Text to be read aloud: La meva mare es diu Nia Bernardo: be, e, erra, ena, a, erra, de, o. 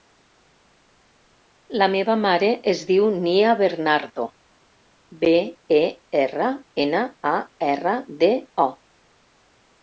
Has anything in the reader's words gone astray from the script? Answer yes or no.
no